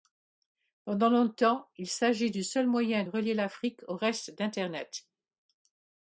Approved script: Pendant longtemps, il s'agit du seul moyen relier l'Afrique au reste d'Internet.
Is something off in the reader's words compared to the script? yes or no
no